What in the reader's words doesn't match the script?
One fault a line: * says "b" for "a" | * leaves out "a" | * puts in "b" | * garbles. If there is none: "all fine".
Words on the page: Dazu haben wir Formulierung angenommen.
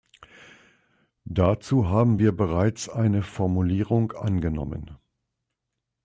* puts in "bereits eine"